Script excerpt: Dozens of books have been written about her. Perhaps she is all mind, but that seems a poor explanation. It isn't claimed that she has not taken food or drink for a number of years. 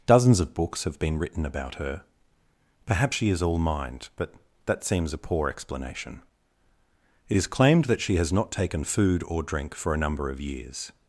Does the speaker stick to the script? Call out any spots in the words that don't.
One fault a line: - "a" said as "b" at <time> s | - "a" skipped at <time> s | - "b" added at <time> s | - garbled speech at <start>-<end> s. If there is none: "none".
- "isn't" said as "is" at 7.3 s